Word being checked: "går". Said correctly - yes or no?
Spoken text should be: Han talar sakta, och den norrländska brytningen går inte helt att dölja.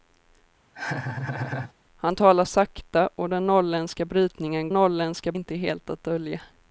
no